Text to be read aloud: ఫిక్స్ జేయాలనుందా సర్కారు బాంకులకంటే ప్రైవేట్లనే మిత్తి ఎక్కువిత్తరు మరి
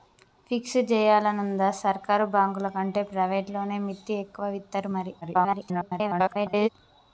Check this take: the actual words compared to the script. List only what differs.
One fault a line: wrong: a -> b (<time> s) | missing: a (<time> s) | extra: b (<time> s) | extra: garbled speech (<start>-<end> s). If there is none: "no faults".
extra: garbled speech (5.2-6.7 s)